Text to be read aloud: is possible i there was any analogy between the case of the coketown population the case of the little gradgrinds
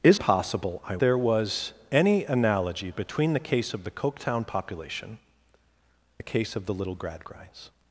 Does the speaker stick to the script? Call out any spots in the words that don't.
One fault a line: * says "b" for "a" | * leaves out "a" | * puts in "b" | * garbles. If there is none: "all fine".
all fine